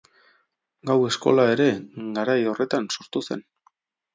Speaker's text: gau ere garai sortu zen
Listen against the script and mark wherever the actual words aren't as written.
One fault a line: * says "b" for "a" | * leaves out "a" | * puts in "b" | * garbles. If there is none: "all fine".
* puts in "eskola"
* puts in "horretan"